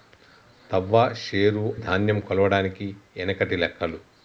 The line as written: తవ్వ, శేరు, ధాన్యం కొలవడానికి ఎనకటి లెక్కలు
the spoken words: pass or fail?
pass